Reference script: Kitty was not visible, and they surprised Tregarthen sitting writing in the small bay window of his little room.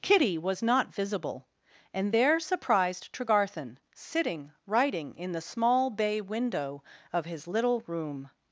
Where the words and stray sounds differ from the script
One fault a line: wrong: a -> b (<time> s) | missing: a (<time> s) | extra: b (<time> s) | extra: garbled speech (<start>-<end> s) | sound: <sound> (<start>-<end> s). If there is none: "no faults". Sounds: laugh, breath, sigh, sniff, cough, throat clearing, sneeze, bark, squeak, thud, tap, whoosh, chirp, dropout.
wrong: they -> there (2.1 s)